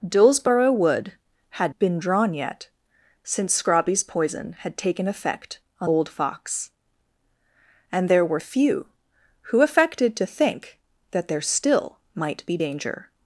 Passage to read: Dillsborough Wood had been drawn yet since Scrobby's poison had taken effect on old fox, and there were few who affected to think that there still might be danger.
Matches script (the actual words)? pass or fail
pass